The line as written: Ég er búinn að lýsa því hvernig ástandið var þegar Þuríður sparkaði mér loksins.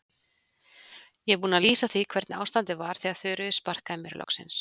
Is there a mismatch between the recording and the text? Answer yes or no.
no